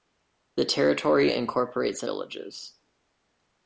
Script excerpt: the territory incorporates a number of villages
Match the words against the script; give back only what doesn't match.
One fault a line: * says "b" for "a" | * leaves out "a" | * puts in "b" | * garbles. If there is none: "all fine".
* leaves out "number of"